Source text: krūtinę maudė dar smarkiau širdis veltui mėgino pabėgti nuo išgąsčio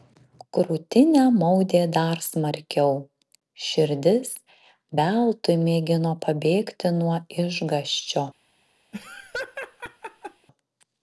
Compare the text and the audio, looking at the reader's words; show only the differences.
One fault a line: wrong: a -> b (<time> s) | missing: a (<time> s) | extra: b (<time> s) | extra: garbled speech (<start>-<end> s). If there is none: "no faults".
no faults